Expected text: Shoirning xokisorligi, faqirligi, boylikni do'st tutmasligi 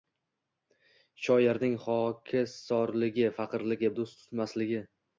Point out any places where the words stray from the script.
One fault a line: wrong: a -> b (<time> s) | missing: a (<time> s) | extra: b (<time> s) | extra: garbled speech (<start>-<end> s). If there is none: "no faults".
missing: boylikni (3.9 s)